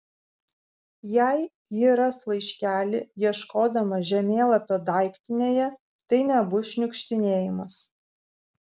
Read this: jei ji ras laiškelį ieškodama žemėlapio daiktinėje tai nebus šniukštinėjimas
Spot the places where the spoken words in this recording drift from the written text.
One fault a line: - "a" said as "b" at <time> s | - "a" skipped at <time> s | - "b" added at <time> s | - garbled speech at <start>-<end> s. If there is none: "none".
none